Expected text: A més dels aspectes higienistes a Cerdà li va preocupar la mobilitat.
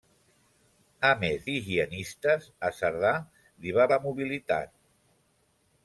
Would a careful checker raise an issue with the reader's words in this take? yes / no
yes